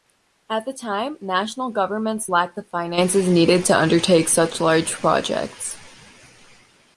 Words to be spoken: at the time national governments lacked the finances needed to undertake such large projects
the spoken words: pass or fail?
pass